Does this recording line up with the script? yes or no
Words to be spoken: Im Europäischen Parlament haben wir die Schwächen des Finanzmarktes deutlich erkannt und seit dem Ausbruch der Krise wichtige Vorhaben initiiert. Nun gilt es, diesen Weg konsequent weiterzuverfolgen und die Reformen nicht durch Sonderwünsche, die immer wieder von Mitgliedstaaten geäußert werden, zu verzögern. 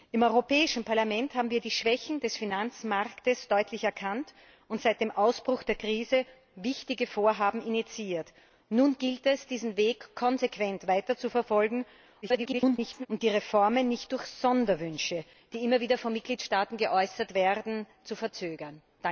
no